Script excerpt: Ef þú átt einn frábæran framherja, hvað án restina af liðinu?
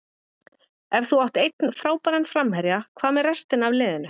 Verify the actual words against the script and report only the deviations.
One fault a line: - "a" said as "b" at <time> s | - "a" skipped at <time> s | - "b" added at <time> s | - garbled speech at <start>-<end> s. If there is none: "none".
- "án" said as "með" at 3.2 s